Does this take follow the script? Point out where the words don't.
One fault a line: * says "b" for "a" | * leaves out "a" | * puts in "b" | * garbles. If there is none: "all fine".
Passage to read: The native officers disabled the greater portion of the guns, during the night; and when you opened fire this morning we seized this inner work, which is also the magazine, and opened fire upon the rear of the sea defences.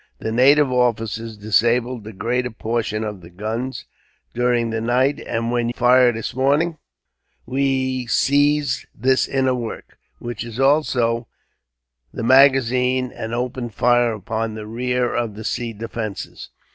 * leaves out "you opened"